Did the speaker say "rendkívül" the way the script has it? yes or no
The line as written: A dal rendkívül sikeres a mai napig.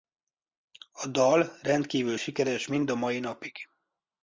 yes